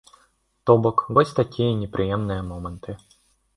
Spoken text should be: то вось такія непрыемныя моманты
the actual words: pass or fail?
fail